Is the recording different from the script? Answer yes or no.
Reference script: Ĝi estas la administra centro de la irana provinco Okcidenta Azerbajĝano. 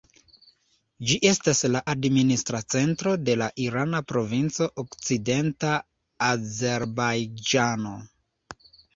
no